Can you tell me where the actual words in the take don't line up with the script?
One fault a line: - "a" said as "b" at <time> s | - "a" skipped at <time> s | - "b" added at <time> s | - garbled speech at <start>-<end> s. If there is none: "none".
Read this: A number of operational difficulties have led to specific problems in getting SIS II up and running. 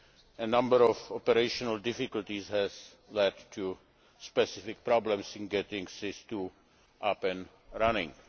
none